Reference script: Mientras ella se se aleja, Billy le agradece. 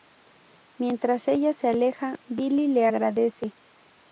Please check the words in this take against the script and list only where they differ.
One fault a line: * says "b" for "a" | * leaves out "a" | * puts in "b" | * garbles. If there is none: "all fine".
* leaves out "se"